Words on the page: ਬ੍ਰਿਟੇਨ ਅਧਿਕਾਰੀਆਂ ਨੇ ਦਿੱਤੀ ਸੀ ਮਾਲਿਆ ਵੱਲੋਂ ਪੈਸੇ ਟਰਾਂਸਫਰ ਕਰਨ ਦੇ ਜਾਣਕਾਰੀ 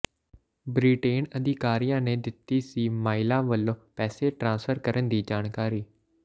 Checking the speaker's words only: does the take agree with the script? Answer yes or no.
no